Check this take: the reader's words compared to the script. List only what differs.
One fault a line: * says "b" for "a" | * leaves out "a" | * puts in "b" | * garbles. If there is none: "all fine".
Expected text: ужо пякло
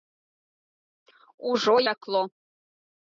all fine